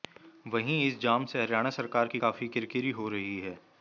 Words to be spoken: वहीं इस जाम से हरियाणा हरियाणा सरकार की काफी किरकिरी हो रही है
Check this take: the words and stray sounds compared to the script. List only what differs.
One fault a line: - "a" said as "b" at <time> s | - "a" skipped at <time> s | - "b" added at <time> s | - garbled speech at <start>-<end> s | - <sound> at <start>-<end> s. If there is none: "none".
- "हरियाणा" skipped at 1.7 s